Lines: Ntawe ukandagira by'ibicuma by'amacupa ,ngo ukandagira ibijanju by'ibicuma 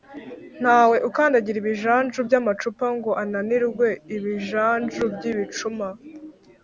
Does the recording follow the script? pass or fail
fail